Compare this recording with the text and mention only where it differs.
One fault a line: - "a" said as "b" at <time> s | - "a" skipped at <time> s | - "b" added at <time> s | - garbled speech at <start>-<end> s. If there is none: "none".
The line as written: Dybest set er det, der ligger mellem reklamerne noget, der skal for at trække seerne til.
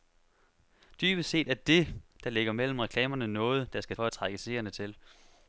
none